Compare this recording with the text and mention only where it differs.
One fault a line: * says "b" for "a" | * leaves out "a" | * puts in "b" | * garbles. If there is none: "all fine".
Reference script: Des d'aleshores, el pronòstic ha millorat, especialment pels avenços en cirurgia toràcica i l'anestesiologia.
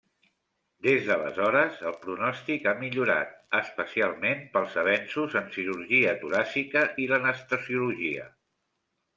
all fine